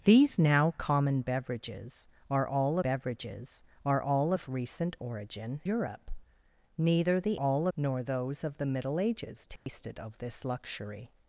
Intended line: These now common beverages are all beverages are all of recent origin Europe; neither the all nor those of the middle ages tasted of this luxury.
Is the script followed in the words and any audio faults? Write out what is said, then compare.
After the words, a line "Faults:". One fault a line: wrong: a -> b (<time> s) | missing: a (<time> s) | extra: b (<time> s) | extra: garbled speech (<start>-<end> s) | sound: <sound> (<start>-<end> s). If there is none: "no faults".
These now common beverages are all beverages are all of recent origin Europe; neither the all nor those of the middle ages tasted of this luxury.
Faults:
sound: dropout (9.6-9.7 s)